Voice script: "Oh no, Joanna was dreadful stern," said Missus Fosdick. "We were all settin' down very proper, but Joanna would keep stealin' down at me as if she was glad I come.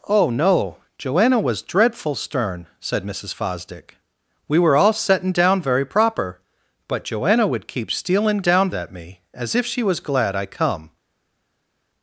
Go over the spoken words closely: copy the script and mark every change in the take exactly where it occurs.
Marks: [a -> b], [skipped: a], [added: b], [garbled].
"Oh no, Joanna was dreadful stern," said Missus Fosdick. "We were all settin' down very proper, but Joanna would keep stealin' down at me as if she was glad I come.